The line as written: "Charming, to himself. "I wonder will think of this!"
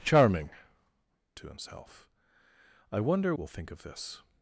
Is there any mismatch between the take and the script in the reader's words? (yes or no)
no